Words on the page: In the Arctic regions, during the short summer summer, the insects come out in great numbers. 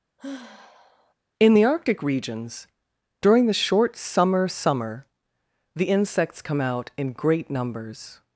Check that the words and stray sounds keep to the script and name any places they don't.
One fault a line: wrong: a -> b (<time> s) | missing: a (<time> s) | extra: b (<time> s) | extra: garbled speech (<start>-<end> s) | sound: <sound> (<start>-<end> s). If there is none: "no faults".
sound: sigh (0.2-1.1 s)